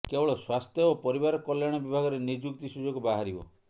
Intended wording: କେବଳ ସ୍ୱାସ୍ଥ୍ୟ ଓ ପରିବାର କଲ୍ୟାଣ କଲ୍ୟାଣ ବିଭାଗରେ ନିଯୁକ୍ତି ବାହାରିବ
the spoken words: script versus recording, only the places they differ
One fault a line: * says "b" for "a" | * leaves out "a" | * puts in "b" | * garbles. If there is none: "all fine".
* leaves out "କଲ୍ୟାଣ"
* puts in "ସୁଯୋଗ"